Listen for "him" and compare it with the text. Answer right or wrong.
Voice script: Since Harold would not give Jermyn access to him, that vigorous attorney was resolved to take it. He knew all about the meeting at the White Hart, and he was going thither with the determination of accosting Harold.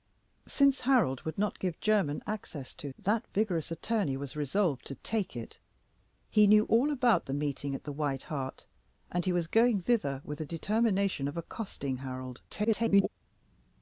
wrong